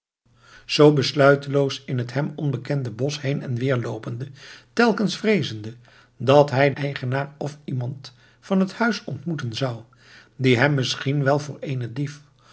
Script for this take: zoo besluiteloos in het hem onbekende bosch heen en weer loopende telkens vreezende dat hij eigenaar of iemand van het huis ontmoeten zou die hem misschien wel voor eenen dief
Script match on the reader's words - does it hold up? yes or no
yes